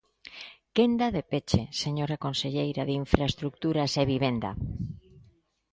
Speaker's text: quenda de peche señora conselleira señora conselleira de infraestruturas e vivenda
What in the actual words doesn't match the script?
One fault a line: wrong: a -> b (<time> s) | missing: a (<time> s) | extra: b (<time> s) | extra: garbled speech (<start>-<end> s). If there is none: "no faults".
missing: señora conselleira (2.8 s)